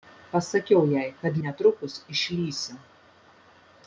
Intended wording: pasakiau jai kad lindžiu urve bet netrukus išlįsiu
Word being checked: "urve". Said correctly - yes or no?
no